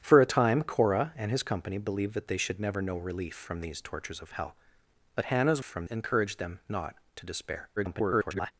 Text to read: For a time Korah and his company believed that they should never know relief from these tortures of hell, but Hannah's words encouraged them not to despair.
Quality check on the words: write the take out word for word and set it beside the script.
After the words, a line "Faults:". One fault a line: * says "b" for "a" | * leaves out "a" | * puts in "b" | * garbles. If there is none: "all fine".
For a time Korah and his company believed that they should never know relief from these tortures of hell, but Hannah's from encouraged them not to despair. [garbled]
Faults:
* says "from" for "words"
* garbles